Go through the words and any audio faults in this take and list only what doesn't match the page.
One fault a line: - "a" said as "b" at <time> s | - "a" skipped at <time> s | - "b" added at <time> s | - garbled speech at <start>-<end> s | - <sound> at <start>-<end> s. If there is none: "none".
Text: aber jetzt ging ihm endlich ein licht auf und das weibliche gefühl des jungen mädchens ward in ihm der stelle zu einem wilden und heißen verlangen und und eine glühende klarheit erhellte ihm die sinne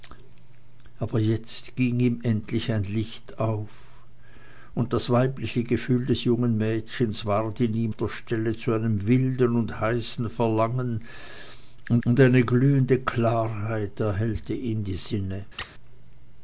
- squeak at 15.6-15.8 s